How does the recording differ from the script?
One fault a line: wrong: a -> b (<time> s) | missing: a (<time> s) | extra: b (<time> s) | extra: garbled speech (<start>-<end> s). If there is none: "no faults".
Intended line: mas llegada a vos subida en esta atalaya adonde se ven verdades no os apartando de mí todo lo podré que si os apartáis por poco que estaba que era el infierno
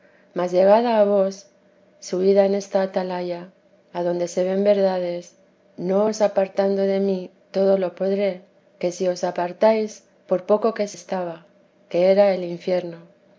no faults